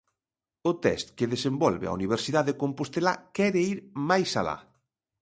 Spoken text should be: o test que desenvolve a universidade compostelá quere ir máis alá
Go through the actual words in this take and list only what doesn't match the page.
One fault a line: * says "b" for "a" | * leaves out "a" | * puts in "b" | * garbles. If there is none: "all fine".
all fine